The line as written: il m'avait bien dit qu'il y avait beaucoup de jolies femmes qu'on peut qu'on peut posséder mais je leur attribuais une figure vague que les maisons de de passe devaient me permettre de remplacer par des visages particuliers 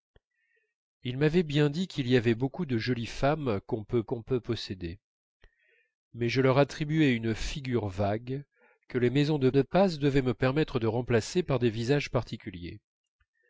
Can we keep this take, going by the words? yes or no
yes